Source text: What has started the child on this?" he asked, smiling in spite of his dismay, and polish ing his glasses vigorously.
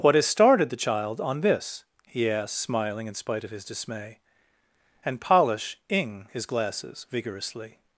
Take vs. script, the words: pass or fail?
pass